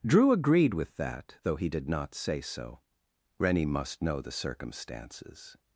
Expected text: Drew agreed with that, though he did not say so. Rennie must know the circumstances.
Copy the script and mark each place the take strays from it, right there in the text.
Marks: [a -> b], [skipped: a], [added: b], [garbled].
Drew agreed with that, though he did not say so. Rennie must know the circumstances.